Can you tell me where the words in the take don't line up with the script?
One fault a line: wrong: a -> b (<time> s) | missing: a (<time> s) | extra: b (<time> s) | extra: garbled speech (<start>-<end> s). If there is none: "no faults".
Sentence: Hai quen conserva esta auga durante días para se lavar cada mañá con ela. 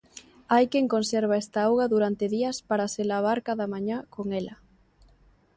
no faults